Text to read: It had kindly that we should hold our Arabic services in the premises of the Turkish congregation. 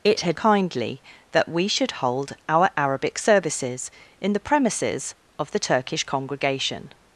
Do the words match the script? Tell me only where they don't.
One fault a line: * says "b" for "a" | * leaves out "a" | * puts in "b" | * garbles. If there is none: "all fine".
all fine